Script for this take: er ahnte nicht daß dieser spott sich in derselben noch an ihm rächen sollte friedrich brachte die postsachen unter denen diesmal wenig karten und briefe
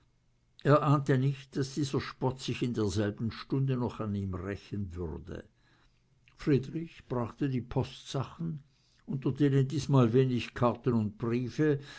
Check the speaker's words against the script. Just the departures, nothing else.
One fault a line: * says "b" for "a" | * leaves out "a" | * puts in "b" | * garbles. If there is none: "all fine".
* puts in "stunde"
* says "würde" for "sollte"